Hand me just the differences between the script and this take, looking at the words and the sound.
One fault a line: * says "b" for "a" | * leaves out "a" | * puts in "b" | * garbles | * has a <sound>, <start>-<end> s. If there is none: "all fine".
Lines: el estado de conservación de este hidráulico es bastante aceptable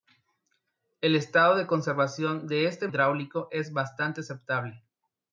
all fine